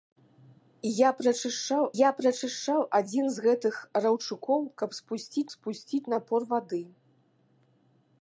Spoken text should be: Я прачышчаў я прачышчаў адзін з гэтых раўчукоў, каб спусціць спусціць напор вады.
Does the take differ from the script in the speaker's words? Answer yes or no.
no